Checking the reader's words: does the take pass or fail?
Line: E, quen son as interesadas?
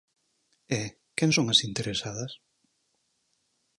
pass